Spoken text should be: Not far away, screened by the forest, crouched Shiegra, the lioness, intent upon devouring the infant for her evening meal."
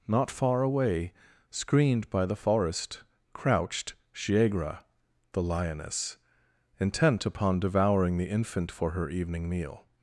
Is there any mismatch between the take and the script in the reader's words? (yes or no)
no